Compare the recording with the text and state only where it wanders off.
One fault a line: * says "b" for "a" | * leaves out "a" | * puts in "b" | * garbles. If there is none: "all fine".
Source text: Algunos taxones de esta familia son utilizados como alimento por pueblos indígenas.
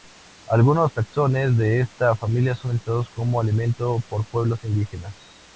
all fine